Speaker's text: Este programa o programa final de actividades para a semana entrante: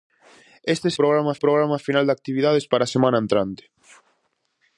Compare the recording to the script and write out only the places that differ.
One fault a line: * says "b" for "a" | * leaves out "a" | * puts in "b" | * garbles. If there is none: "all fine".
all fine